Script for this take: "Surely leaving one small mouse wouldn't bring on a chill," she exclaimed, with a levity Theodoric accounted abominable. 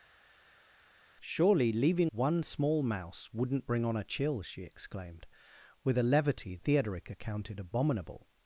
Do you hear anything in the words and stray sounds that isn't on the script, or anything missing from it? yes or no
no